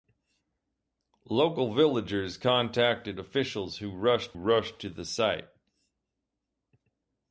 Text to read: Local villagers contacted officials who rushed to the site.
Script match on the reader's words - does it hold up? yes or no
no